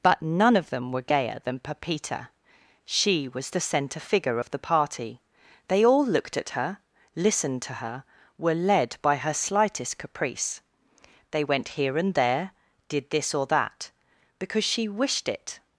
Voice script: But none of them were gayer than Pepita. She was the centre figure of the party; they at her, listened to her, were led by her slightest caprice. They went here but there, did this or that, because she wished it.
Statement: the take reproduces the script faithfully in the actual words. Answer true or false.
false